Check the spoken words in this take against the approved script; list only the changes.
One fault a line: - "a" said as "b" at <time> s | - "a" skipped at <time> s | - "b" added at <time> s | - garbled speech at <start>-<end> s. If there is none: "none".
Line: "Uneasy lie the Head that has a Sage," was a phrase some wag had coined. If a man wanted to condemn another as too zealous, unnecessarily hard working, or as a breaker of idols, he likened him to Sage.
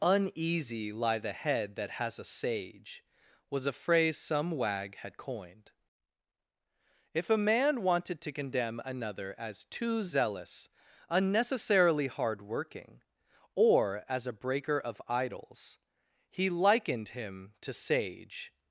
none